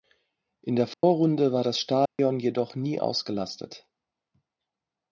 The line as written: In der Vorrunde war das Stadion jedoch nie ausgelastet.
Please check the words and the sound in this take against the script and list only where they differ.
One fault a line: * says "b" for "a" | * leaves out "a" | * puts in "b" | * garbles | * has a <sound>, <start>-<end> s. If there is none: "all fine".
* has a dropout, 0.9-1.0 s
* has a dropout, 2.1-2.2 s